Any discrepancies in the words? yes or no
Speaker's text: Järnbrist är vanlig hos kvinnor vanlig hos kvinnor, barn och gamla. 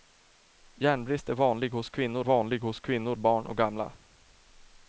no